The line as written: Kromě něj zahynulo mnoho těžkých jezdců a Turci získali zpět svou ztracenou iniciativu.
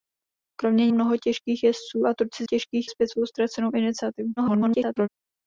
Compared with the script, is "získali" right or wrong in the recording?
wrong